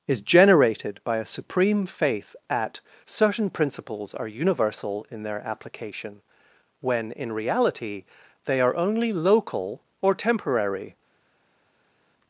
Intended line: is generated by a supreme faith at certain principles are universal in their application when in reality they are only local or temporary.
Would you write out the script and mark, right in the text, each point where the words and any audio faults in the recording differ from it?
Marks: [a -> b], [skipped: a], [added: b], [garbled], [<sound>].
is generated by a supreme faith at certain principles are universal in their application when in reality they are only local or temporary.